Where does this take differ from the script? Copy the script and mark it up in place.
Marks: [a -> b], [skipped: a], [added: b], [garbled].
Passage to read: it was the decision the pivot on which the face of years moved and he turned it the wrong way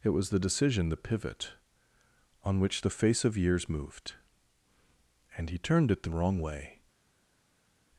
it was the decision the pivot on which the face of years moved and he turned it the wrong way